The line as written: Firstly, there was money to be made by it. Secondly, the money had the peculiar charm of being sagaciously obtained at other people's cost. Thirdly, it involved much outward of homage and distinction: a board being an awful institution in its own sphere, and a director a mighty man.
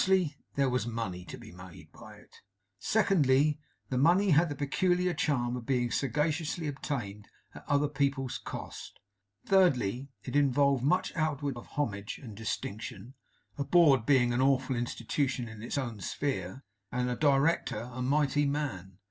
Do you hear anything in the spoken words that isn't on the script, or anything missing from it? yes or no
no